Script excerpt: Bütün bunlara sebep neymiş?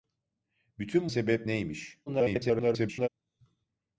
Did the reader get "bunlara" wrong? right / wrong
wrong